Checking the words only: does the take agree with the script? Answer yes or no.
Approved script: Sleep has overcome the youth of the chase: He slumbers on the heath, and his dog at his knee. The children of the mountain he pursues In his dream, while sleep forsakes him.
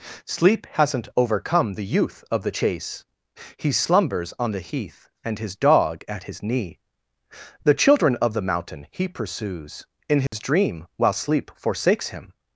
no